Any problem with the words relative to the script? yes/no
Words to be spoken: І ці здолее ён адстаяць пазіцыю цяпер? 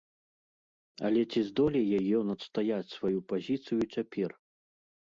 yes